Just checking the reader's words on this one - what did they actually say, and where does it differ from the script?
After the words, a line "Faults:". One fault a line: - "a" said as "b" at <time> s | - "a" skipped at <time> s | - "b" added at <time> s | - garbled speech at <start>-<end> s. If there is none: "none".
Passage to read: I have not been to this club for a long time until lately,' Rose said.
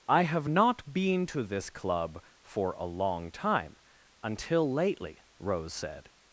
I have not been to this club for a long time until lately,' Rose said.
Faults:
none